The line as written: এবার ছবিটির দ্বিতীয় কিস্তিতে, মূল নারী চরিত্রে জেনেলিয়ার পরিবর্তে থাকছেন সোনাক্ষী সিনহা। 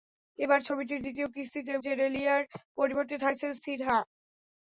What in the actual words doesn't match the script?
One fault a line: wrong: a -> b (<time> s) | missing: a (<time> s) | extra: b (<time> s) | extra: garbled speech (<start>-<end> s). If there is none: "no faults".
missing: মূল নারী চরিত্রে (1.7 s)
missing: সোনাক্ষী (3.5 s)